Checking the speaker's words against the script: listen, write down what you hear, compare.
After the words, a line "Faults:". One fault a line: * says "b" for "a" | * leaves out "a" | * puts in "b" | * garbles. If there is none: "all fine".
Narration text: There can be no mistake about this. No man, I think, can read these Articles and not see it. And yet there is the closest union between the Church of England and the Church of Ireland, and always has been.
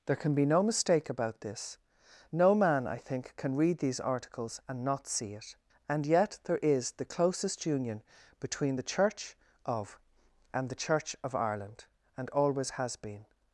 There can be no mistake about this. No man, I think, can read these Articles and not see it. And yet there is the closest union between the Church of and the Church of Ireland, and always has been.
Faults:
* leaves out "England"